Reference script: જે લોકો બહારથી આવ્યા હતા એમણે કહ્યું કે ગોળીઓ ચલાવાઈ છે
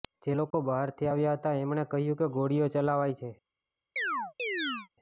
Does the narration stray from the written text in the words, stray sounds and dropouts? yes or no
yes